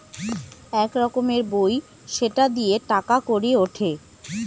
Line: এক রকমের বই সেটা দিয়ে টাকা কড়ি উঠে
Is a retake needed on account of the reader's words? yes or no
no